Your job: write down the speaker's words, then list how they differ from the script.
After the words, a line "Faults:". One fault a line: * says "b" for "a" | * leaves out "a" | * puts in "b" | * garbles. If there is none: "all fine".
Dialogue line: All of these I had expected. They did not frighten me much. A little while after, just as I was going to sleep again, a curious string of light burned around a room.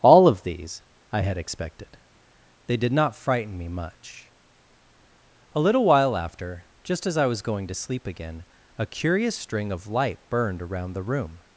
All of these I had expected. They did not frighten me much. A little while after, just as I was going to sleep again, a curious string of light burned around the room.
Faults:
* says "the" for "a"